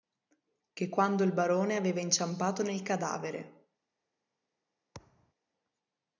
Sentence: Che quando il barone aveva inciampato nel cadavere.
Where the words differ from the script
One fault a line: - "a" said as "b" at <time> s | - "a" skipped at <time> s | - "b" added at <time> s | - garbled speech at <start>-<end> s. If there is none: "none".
none